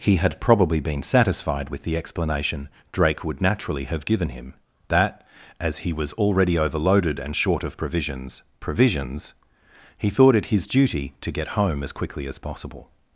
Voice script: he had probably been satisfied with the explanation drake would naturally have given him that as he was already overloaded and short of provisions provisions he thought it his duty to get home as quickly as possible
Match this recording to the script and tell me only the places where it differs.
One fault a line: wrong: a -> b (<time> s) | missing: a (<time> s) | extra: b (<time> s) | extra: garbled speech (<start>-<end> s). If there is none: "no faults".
no faults